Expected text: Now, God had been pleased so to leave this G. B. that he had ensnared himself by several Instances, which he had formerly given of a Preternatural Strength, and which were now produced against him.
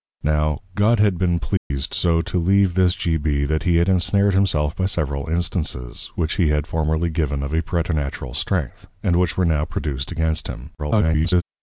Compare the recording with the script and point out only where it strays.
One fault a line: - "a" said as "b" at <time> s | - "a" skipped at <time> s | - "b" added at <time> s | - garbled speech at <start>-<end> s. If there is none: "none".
- garbled speech at 10.8-11.4 s